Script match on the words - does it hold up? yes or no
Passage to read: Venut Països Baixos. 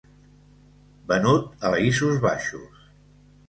yes